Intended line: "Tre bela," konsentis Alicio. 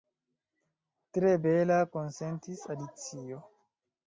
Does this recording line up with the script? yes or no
yes